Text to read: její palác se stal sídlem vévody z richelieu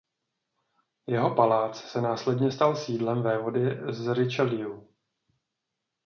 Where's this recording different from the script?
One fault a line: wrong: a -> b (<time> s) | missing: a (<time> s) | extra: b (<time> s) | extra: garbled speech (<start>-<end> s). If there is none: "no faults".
wrong: její -> jeho (1.1 s)
extra: následně (2.0 s)